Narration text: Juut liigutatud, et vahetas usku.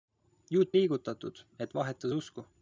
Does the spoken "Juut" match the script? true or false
true